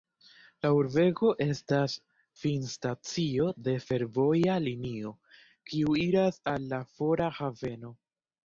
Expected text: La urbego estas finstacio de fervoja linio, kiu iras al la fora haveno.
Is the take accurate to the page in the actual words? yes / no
yes